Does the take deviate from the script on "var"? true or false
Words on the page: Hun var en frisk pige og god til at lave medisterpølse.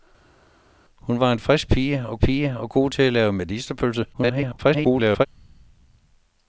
false